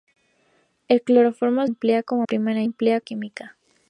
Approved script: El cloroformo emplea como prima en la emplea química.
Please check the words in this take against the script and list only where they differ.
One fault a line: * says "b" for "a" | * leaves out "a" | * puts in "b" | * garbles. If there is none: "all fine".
all fine